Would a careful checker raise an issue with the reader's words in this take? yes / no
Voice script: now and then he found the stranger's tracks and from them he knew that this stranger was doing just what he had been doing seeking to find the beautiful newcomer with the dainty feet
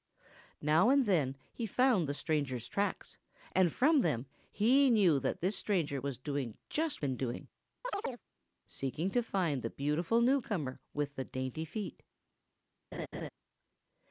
yes